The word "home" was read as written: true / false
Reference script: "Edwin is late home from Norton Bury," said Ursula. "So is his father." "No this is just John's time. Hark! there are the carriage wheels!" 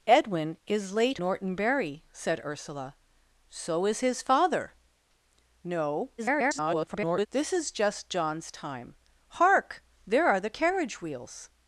false